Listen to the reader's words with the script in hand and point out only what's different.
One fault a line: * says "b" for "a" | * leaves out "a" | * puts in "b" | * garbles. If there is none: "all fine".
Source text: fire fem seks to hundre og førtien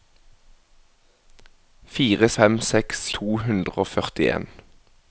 all fine